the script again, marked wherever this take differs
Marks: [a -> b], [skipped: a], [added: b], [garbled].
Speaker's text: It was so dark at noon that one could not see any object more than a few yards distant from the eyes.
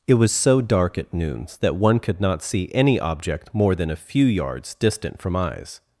It was so dark at [noon -> noons] that one could not see any object more than a few yards distant from [skipped: the] eyes.